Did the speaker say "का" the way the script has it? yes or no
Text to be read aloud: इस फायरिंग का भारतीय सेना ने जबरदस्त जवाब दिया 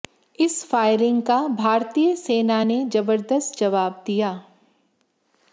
yes